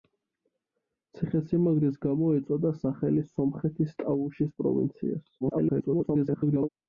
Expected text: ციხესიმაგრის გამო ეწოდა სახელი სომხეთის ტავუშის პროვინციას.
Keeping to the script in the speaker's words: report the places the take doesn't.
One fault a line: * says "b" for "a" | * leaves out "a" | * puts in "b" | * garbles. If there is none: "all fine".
* garbles